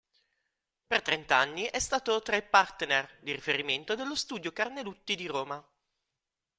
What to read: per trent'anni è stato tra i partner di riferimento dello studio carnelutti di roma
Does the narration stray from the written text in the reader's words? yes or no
no